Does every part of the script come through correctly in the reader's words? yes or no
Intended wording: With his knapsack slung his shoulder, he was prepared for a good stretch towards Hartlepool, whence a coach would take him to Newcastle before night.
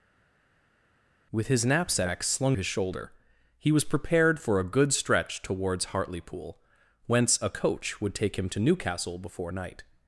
yes